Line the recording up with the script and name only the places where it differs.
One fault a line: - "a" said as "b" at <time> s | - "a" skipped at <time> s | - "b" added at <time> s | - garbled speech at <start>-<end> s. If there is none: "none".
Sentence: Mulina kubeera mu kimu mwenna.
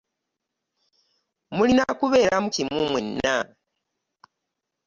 none